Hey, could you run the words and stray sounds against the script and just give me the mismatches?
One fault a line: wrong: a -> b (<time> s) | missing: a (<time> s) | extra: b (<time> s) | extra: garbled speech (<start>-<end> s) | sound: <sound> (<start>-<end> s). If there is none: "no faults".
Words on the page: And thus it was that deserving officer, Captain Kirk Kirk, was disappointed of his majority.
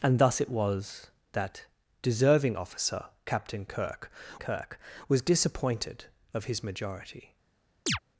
sound: chirp (7.9-8.0 s)